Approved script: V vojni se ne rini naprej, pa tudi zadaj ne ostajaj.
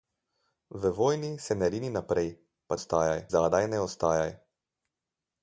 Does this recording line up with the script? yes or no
no